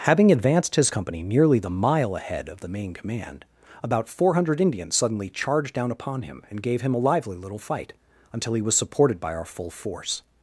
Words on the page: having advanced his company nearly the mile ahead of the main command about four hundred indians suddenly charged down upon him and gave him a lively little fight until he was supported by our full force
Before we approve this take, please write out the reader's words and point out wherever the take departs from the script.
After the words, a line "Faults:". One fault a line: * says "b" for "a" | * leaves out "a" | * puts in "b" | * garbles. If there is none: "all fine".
having advanced his company nearly the mile ahead of the main command about four hundred indians suddenly charged down upon him and gave him a lively little fight until he was supported by our full force
Faults:
all fine